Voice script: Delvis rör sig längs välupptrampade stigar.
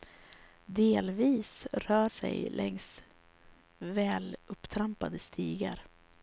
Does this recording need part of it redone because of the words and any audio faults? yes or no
no